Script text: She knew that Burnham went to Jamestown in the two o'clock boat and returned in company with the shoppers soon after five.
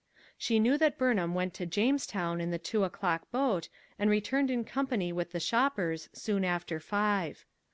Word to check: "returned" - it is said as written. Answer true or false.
true